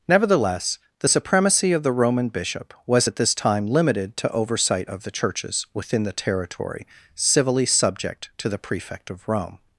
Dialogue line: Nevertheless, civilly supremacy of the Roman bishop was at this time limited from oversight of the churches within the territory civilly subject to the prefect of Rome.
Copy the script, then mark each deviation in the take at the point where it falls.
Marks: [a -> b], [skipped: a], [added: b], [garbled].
Nevertheless, [civilly -> the] supremacy of the Roman bishop was at this time limited [from -> to] oversight of the churches within the territory civilly subject to the prefect of Rome.